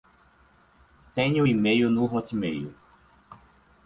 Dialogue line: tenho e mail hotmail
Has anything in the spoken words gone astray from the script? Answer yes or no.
yes